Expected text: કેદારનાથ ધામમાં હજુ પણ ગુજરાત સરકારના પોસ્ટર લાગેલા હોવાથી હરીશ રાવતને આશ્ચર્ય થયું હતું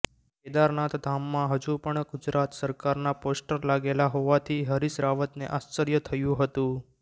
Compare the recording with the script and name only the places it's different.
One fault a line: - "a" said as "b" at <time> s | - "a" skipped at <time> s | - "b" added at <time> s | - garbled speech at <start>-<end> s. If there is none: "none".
none